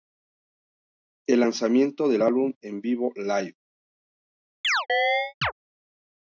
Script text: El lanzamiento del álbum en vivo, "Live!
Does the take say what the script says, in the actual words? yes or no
yes